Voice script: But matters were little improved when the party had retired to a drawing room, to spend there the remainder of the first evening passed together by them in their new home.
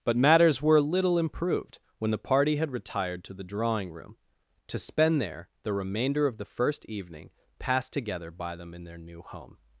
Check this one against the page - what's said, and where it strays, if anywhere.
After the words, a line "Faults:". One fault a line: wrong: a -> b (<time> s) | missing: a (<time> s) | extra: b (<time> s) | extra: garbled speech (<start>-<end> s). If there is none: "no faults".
But matters were little improved when the party had retired to the drawing room, to spend there the remainder of the first evening passed together by them in their new home.
Faults:
wrong: a -> the (3.3 s)